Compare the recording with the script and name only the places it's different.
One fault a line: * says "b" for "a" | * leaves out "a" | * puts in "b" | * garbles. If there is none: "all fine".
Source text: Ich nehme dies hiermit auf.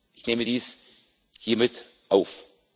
all fine